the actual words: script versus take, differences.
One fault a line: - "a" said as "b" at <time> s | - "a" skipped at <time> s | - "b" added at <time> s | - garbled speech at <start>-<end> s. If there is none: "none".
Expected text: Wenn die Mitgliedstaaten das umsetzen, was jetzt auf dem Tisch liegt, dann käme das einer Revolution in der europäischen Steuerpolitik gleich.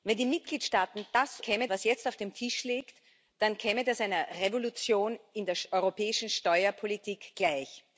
- "umsetzen" said as "käme" at 1.4 s